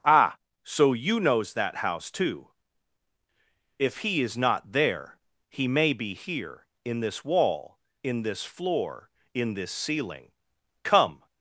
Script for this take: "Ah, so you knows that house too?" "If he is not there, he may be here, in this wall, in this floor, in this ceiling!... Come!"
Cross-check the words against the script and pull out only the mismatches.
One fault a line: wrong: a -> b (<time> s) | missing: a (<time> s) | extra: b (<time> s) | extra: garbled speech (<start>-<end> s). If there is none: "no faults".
no faults